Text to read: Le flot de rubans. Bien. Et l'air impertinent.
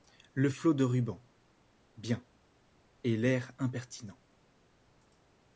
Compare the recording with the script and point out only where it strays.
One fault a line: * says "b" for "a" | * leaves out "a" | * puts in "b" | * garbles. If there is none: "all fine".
all fine